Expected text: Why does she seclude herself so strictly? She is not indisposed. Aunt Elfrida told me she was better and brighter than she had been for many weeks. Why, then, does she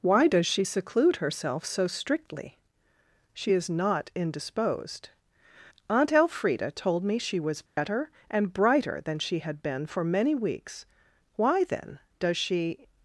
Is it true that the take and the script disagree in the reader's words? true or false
false